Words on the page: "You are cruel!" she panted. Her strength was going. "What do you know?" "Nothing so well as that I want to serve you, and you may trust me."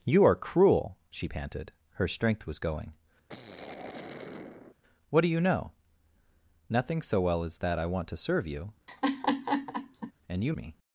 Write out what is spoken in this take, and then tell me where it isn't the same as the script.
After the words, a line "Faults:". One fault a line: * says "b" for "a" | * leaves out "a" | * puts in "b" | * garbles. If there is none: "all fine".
"You are cruel!" she panted. Her strength was going. "What do you know?" "Nothing so well as that I want to serve you, and you me."
Faults:
* leaves out "may trust"